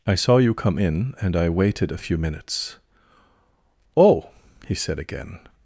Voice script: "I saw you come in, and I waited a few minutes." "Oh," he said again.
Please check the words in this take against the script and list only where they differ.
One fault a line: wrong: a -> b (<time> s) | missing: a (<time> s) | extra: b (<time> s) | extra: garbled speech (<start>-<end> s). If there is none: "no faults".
no faults